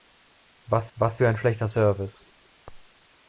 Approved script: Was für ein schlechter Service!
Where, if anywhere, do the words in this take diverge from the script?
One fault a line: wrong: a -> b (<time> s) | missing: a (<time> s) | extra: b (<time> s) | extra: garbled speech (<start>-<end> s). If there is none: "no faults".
extra: was (0.9 s)